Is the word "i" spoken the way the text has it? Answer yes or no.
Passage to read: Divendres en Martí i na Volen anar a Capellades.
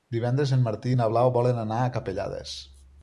yes